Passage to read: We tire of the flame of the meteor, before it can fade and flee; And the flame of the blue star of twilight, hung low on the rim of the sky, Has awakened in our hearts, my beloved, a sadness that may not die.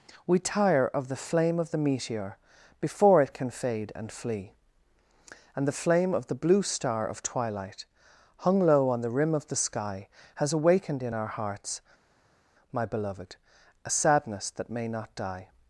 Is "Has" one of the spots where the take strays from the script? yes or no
no